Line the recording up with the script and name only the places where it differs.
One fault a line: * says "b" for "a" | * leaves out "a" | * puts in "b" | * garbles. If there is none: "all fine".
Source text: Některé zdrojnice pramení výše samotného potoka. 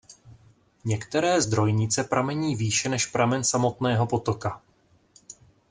* puts in "než pramen"